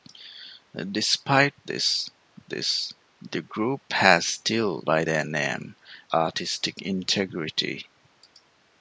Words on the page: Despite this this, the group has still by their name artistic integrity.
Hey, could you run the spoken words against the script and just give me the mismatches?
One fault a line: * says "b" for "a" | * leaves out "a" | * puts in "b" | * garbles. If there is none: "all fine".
all fine